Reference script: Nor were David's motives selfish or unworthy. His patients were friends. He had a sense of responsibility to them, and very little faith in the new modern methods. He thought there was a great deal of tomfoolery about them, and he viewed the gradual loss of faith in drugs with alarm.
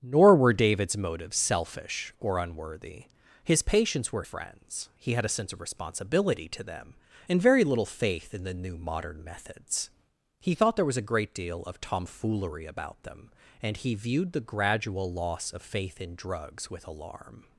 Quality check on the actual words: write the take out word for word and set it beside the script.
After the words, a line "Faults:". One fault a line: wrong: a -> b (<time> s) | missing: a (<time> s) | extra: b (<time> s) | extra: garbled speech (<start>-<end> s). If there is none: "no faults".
Nor were David's motives selfish or unworthy. His patients were friends. He had a sense of responsibility to them, and very little faith in the new modern methods. He thought there was a great deal of tomfoolery about them, and he viewed the gradual loss of faith in drugs with alarm.
Faults:
no faults